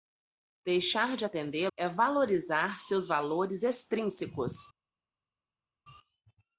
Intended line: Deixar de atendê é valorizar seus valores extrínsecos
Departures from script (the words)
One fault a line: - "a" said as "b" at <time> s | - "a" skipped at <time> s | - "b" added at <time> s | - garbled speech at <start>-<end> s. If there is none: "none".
none